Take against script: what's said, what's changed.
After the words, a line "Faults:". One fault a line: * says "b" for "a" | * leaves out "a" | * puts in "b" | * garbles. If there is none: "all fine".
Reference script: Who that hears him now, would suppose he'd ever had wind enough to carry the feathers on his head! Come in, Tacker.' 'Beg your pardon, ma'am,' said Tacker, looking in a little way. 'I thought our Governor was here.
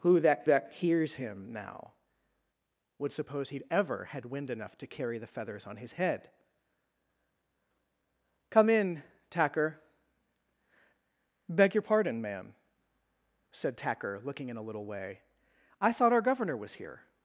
Who that that hears him now, would suppose he'd ever had wind enough to carry the feathers on his head! Come in, Tacker.' 'Beg your pardon, ma'am,' said Tacker, looking in a little way. 'I thought our Governor was here.
Faults:
* puts in "that"